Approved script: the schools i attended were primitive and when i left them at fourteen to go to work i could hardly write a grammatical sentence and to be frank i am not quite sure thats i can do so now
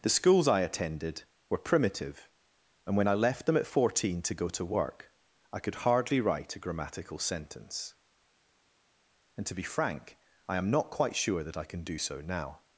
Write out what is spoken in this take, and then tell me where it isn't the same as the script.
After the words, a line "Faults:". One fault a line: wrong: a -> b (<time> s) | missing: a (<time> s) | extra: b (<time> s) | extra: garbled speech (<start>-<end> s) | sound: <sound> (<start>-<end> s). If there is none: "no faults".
the schools i attended were primitive and when i left them at fourteen to go to work i could hardly write a grammatical sentence and to be frank i am not quite sure that i can do so now
Faults:
wrong: thats -> that (11.4 s)